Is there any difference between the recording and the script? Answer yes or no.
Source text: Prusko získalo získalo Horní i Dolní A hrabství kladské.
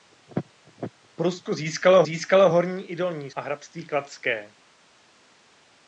no